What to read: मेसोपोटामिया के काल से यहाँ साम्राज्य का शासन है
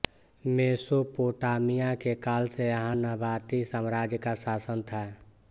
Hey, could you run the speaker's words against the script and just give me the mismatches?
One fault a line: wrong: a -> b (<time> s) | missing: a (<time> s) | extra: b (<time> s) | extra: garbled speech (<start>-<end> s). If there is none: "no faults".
extra: नबाती (2.9 s)
wrong: है -> था (4.8 s)